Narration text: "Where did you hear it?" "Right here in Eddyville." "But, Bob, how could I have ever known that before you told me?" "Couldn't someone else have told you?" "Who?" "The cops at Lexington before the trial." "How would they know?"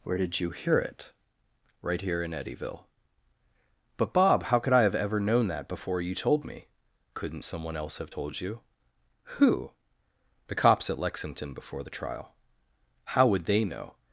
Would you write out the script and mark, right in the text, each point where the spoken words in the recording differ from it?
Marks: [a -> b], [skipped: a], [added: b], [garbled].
"Where did you hear it?" "Right here in Eddyville." "But, Bob, how could I have ever known that before you told me?" "Couldn't someone else have told you?" "Who?" "The cops at Lexington before the trial." "How would they know?"